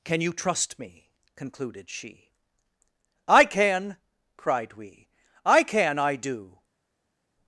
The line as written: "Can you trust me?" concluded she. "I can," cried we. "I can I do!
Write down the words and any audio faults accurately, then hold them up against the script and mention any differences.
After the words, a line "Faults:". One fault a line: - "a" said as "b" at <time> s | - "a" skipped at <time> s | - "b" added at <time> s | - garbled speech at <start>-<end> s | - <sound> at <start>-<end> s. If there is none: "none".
"Can you trust me?" concluded she. "I can," cried we. "I can I do!
Faults:
none